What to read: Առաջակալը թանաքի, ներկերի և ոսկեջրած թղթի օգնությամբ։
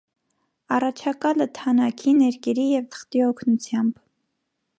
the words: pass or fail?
fail